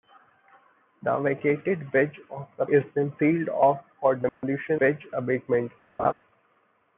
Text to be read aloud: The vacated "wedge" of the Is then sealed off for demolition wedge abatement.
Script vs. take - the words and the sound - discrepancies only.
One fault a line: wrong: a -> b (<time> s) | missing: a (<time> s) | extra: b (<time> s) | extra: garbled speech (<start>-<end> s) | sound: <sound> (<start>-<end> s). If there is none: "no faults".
sound: dropout (4.3-4.4 s)
sound: laugh (6.0-6.1 s)